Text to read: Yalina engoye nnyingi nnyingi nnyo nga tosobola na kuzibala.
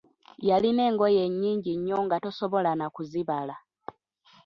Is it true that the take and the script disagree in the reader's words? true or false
true